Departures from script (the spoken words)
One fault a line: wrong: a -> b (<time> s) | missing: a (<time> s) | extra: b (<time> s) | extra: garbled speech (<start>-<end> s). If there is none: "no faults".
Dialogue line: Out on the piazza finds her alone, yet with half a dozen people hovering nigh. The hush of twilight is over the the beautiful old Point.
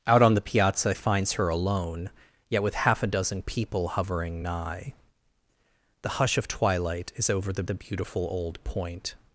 no faults